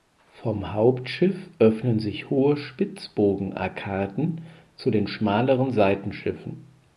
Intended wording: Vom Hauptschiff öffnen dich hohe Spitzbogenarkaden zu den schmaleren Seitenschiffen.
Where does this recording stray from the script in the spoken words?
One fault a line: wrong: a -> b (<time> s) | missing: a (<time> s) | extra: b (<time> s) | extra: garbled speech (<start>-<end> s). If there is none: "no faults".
wrong: dich -> sich (2.0 s)